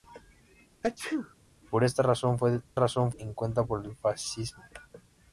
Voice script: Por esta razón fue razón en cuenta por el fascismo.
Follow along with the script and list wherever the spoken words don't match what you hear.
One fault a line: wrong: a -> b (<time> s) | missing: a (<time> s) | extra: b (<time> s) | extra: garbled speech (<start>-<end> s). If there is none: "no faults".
no faults